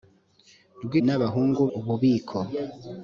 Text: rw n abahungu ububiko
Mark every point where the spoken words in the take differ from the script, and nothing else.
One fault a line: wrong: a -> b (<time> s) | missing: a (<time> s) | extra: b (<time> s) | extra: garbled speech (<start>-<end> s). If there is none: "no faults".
no faults